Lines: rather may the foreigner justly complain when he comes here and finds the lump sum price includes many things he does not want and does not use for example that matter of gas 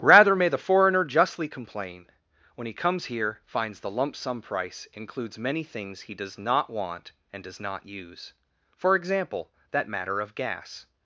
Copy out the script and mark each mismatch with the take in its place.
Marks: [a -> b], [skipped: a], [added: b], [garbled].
rather may the foreigner justly complain when he comes here [skipped: and] finds the lump sum price includes many things he does not want and does not use for example that matter of gas